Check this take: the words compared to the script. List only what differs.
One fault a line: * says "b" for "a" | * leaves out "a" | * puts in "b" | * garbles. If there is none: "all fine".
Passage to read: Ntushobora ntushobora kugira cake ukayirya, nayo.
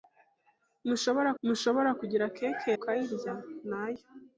all fine